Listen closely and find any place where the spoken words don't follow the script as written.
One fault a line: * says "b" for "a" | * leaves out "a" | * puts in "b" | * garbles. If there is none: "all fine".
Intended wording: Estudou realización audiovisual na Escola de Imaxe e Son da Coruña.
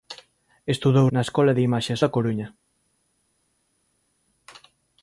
* leaves out "realización audiovisual"
* leaves out "Son"